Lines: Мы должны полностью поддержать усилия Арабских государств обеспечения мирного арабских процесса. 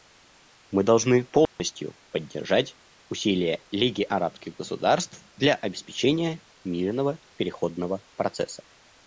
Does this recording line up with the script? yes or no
no